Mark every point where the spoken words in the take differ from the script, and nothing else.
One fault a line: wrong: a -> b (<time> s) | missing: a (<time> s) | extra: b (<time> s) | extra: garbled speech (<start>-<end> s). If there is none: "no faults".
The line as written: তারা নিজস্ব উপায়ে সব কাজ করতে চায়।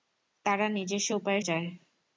missing: সব কাজ করতে (1.4 s)